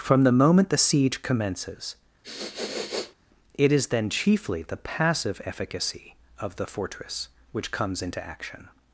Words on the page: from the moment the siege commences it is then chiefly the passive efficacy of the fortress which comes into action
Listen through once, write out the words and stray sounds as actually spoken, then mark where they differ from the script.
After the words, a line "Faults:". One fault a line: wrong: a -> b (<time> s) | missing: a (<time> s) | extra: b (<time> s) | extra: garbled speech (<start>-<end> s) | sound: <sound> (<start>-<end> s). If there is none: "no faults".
from the moment the siege commences it is then chiefly the passive efficacy of the fortress which comes into action
Faults:
sound: sniff (2.2-3.1 s)